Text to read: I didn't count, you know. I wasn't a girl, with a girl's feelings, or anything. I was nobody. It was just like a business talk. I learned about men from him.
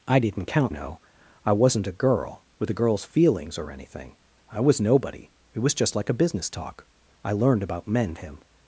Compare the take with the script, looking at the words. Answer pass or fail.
fail